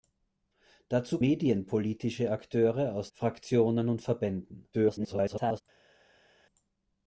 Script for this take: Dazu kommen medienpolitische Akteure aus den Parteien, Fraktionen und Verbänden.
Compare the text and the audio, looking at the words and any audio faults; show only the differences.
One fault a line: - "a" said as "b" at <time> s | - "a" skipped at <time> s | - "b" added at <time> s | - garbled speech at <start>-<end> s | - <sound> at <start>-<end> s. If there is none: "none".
- "kommen" skipped at 1.2 s
- "den Parteien" skipped at 3.1 s
- garbled speech at 4.7-5.6 s